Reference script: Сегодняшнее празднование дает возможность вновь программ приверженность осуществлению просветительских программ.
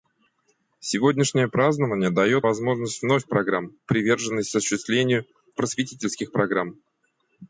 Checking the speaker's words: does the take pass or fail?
pass